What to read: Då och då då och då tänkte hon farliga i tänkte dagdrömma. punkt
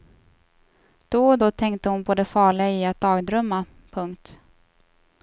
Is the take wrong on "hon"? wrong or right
wrong